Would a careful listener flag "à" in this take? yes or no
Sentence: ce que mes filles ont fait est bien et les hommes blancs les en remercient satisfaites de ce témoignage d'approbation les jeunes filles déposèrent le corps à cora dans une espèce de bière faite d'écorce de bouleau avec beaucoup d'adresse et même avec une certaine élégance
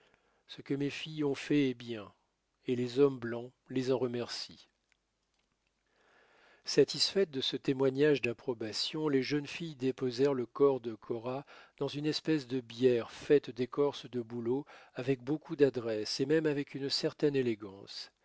yes